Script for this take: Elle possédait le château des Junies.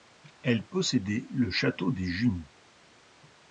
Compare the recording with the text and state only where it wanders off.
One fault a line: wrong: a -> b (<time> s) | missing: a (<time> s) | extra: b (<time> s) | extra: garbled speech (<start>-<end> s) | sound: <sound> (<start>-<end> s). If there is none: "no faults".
no faults